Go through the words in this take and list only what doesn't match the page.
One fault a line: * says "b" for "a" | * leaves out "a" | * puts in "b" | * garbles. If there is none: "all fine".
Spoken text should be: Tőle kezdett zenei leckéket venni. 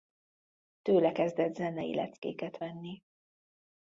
all fine